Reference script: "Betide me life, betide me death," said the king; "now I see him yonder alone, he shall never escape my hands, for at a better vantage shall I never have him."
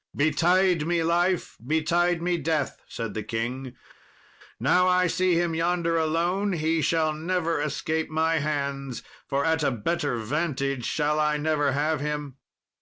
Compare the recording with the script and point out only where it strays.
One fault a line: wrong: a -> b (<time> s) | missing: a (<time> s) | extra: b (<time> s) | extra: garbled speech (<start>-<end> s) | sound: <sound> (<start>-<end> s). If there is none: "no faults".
no faults